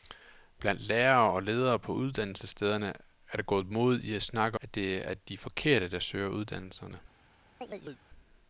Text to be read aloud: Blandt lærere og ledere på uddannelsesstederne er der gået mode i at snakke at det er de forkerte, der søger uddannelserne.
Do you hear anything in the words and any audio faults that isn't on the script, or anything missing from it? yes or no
yes